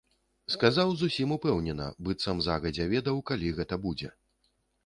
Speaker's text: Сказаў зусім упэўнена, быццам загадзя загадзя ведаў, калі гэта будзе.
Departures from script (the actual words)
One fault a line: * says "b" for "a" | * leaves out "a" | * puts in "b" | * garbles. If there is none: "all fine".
* leaves out "загадзя"